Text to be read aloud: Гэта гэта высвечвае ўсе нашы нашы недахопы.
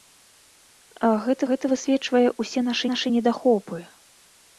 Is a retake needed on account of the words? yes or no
no